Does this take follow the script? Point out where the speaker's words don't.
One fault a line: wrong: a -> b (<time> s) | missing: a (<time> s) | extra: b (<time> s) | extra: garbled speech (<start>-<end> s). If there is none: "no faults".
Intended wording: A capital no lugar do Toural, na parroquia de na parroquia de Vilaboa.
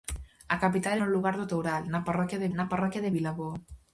no faults